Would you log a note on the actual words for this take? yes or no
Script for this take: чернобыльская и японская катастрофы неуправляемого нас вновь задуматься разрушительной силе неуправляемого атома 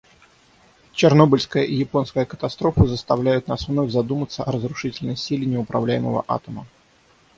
yes